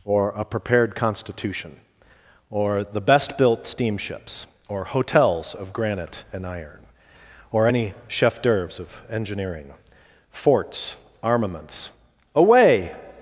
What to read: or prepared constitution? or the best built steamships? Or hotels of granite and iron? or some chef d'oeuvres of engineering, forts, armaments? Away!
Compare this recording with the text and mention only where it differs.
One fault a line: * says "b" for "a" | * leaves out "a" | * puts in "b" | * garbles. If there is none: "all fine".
* puts in "a"
* says "any" for "some"